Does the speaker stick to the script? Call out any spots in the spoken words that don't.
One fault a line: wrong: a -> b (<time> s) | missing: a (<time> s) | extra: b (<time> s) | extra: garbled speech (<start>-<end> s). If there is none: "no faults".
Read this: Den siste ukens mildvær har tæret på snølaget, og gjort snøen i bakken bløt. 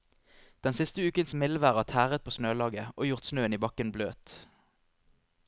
no faults